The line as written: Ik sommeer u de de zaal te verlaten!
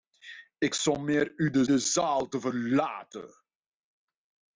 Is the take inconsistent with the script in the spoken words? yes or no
no